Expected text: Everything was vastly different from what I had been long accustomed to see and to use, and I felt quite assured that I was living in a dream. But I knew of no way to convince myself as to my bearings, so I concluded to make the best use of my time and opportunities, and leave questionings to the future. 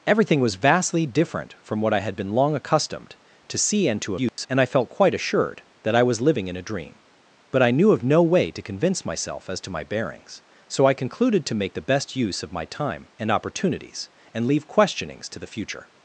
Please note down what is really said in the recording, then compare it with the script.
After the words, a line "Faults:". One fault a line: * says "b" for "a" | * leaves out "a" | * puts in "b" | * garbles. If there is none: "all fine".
Everything was vastly different from what I had been long accustomed to see and to use, and I felt quite assured that I was living in a dream. But I knew of no way to convince myself as to my bearings, so I concluded to make the best use of my time and opportunities, and leave questionings to the future.
Faults:
all fine